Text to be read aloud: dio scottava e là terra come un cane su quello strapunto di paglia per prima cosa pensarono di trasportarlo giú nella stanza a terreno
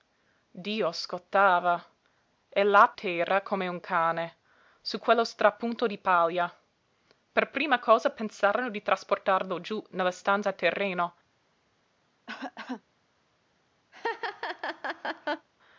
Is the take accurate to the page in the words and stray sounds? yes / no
no